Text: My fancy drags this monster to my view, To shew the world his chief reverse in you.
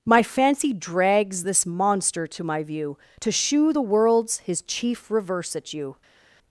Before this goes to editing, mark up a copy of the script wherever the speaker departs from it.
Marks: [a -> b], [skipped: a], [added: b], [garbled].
My fancy drags this monster to my view, To shew the [world -> worlds] his chief reverse [in -> at] you.